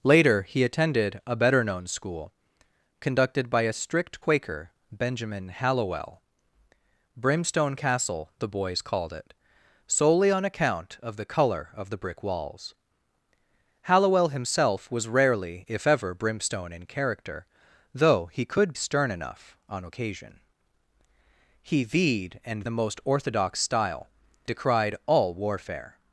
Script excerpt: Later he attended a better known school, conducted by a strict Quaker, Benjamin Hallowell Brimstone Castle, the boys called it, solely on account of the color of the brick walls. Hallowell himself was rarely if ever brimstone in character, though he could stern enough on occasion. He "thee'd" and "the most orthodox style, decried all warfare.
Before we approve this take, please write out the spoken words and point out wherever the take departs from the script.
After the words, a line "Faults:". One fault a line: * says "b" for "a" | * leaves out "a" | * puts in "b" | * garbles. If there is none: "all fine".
Later he attended a better known school, conducted by a strict Quaker, Benjamin Hallowell Brimstone Castle, the boys called it, solely on account of the color of the brick walls. Hallowell himself was rarely if ever brimstone in character, though he could stern enough on occasion. He "thee'd" and "the most orthodox style, decried all warfare.
Faults:
all fine